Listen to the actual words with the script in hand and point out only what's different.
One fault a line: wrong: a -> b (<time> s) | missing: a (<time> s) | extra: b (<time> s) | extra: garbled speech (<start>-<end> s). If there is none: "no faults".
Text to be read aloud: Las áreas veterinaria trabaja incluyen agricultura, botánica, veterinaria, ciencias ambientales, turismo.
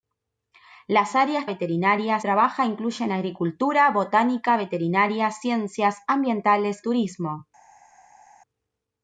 no faults